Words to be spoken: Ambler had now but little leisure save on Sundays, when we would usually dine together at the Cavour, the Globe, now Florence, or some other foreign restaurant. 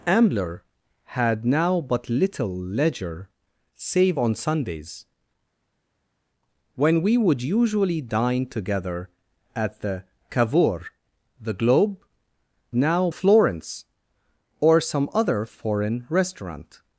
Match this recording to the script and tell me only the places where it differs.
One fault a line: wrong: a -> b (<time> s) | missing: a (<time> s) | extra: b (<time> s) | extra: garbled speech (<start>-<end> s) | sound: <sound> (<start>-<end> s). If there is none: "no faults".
no faults